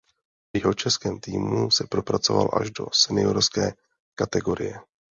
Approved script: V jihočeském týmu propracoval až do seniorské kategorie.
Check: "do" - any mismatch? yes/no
no